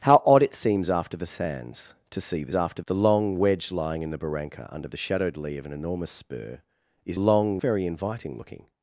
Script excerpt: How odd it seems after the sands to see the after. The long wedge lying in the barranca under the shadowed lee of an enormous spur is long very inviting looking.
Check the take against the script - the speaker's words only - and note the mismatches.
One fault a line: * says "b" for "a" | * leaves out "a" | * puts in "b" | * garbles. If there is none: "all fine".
all fine